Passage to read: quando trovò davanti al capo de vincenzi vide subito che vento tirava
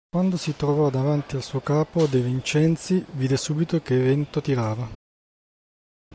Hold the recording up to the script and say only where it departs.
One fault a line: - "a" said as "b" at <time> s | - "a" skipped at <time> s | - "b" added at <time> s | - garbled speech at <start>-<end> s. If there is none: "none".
- "si" added at 0.4 s
- "suo" added at 1.4 s